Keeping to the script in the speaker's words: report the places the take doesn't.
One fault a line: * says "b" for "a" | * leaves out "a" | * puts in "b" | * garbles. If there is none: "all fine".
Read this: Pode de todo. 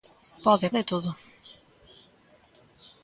all fine